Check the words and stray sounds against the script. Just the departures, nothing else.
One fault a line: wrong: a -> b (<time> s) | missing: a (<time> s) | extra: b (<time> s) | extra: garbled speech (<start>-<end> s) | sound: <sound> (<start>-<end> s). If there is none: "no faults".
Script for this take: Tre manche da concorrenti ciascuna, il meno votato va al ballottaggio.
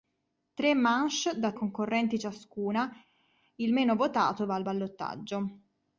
no faults